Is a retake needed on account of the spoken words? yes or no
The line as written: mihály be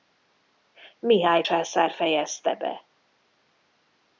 yes